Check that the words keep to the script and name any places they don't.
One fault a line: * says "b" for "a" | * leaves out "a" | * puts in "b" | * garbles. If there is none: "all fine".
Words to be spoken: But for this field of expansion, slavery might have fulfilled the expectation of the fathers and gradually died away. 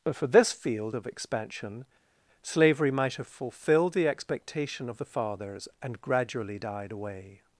all fine